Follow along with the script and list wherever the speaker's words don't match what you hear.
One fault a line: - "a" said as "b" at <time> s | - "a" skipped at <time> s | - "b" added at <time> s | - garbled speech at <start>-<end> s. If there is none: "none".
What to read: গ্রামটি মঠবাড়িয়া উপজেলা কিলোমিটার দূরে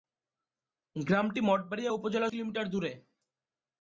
none